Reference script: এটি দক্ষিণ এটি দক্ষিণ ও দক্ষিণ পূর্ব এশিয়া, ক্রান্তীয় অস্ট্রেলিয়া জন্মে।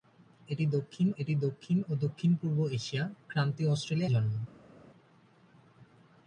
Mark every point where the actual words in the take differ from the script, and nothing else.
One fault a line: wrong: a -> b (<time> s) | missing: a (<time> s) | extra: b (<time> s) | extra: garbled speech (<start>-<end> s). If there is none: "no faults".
no faults